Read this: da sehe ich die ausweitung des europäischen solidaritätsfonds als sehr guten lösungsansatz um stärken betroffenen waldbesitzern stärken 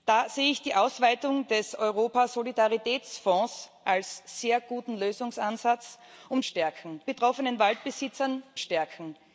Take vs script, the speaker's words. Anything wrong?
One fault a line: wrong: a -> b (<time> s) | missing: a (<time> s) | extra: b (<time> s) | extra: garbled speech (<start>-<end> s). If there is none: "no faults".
no faults